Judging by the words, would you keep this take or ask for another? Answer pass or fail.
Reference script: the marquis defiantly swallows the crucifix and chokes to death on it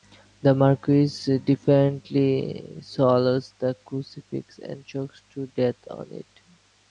pass